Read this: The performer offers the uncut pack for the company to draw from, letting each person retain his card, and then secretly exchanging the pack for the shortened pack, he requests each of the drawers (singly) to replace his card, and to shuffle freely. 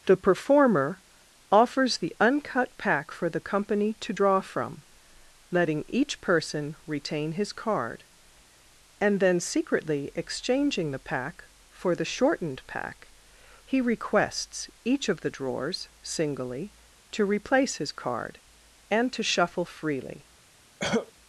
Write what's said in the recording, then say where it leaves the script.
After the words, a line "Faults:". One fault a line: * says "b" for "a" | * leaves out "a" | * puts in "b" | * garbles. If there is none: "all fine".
The performer offers the uncut pack for the company to draw from, letting each person retain his card, and then secretly exchanging the pack for the shortened pack, he requests each of the drawers (singly) to replace his card, and to shuffle freely.
Faults:
all fine